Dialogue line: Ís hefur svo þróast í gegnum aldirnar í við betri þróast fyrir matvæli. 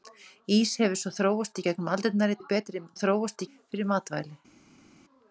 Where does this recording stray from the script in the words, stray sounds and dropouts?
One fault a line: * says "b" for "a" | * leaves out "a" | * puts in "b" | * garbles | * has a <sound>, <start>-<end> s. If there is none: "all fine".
all fine